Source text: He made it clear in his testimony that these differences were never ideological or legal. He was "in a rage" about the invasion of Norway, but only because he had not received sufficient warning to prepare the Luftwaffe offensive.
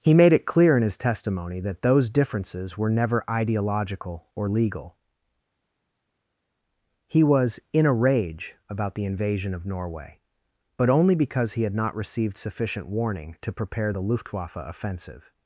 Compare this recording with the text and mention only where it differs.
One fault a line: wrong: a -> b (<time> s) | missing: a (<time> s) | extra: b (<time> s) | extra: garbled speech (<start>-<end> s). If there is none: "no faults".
wrong: these -> those (1.8 s)